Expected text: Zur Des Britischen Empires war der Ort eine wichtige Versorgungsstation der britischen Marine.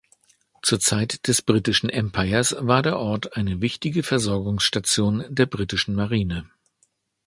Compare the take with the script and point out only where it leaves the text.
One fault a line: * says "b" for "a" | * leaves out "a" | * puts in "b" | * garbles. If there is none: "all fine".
* puts in "Zeit"